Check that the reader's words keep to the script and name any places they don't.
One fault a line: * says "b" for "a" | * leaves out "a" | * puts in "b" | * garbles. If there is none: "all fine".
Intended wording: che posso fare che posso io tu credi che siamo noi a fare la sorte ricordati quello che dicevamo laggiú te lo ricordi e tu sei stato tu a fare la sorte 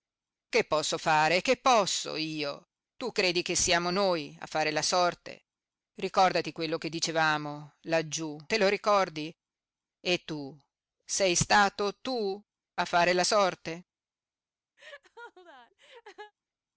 all fine